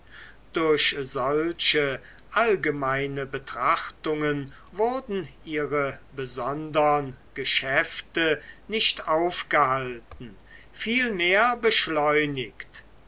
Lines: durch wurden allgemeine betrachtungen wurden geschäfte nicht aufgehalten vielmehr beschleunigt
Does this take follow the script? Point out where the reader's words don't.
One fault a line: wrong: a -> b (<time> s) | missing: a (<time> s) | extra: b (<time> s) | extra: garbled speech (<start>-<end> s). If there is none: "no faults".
wrong: wurden -> solche (1.0 s)
extra: ihre besondern (5.4 s)